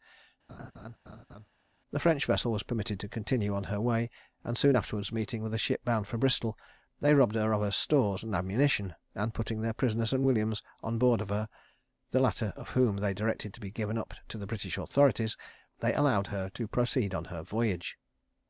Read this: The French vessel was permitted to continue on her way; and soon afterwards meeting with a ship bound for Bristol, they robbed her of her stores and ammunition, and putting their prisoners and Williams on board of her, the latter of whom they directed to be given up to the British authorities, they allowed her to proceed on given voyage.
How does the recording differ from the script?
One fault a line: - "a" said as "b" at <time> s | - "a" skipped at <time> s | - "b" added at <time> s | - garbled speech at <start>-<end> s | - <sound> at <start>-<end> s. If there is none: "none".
- laugh at 0.5-1.5 s
- "given" said as "her" at 17.3 s